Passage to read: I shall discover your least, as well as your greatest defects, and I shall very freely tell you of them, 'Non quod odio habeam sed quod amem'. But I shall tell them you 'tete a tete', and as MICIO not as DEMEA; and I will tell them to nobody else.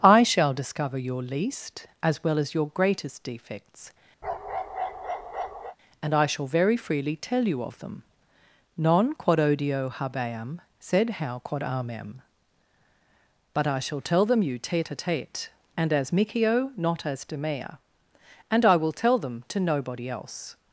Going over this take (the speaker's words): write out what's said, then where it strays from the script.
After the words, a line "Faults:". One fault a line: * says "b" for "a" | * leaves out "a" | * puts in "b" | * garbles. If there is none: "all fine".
I shall discover your least, as well as your greatest defects, and I shall very freely tell you of them, 'Non quod odio habeam sed how quod amem'. But I shall tell them you 'tete a tete', and as MICIO not as DEMEA; and I will tell them to nobody else.
Faults:
* puts in "how"